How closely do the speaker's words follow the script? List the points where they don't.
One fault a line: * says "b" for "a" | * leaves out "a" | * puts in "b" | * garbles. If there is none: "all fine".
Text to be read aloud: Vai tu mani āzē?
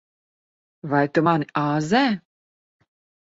all fine